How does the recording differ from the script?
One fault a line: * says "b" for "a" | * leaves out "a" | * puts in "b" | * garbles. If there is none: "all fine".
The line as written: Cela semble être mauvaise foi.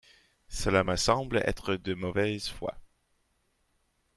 * puts in "me"
* puts in "de"